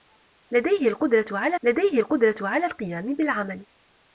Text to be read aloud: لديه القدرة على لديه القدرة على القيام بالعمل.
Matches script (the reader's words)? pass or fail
pass